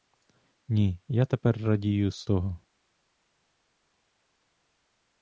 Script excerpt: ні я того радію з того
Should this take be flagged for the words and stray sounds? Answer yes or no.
yes